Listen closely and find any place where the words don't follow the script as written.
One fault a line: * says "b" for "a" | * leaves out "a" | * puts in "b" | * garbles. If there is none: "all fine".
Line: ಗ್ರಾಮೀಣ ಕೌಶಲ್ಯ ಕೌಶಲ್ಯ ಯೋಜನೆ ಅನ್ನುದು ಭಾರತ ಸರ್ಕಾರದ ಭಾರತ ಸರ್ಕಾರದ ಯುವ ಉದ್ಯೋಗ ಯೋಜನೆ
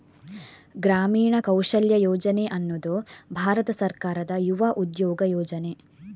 * leaves out "ಕೌಶಲ್ಯ"
* leaves out "ಭಾರತ ಸರ್ಕಾರದ"